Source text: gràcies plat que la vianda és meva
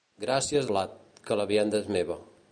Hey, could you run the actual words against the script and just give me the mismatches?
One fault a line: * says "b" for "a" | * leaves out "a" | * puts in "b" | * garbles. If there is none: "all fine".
all fine